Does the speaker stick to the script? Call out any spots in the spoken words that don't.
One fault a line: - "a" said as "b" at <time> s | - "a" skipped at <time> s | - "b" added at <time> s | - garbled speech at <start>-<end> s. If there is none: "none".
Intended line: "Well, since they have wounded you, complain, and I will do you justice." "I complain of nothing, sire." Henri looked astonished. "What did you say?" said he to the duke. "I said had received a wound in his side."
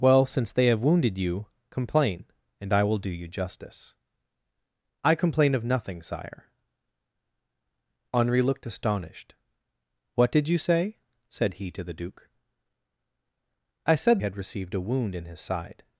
none